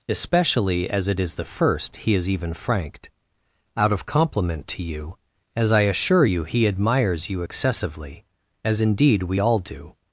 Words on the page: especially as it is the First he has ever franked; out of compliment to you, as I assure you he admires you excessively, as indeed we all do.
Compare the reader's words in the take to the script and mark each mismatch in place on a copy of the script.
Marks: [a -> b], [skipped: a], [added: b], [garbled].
especially as it is the First he has [ever -> even] franked; out of compliment to you, as I assure you he admires you excessively, as indeed we all do.